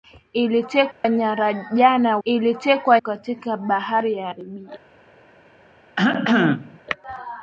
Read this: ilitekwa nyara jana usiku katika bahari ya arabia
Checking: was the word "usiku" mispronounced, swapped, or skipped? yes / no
yes